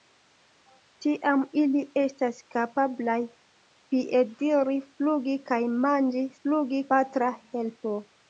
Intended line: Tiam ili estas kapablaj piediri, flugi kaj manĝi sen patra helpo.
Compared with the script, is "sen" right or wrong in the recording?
wrong